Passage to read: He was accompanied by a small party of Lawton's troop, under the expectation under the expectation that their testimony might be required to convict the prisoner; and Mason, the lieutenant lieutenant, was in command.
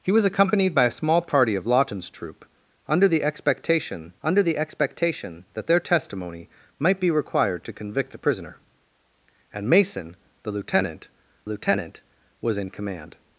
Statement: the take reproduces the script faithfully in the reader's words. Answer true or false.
true